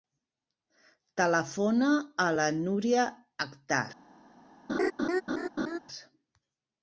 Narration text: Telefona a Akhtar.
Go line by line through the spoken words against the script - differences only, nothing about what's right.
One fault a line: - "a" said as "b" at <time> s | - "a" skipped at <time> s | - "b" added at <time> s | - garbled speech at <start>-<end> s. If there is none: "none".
- "la Núria" added at 2.4 s